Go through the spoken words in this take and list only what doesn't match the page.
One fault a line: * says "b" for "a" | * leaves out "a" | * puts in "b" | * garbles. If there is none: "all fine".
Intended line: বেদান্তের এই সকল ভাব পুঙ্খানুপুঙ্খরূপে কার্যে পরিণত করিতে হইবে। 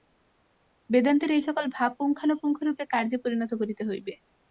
all fine